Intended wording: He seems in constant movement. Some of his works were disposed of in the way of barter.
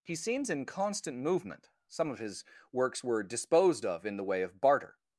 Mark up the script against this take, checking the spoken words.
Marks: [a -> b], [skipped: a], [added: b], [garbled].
He seems in constant movement. Some of his works were disposed of in the way of barter.